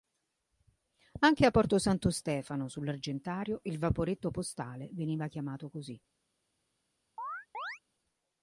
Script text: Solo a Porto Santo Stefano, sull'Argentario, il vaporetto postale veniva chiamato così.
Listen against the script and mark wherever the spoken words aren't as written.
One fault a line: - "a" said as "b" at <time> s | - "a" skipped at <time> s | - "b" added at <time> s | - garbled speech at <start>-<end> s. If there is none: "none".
- "Solo" said as "Anche" at 1.2 s